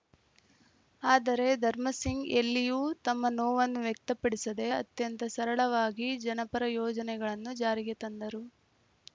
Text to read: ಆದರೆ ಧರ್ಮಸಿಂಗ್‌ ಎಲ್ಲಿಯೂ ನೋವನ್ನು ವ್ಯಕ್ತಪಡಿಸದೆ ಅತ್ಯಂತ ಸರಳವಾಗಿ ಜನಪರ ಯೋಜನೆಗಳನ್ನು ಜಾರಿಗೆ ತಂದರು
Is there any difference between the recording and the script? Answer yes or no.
yes